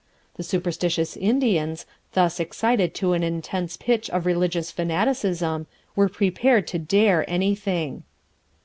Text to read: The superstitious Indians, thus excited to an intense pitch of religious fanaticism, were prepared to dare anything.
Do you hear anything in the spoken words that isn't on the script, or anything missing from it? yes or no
no